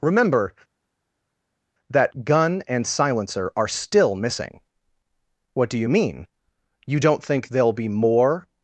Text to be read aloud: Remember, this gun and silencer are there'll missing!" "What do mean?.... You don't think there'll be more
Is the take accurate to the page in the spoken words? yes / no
no